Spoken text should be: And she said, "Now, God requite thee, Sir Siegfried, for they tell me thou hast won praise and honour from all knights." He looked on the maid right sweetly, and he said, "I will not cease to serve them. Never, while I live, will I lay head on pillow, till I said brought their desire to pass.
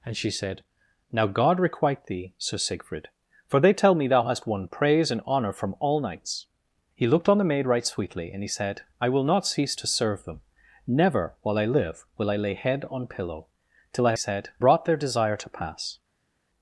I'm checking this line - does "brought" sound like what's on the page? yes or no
yes